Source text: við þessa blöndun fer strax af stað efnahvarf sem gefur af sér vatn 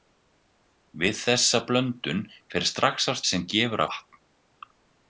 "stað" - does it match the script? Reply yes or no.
no